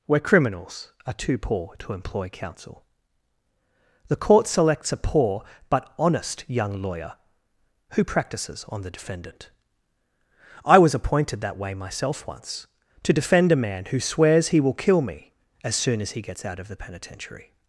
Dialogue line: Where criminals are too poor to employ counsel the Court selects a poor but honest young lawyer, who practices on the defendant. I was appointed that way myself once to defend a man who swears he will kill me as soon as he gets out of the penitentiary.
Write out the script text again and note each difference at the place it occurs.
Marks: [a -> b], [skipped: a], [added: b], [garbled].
Where criminals are too poor to employ counsel the Court selects a poor but honest young lawyer, who practices on the defendant. I was appointed that way myself once to defend a man who swears he will kill me as soon as he gets out of the penitentiary.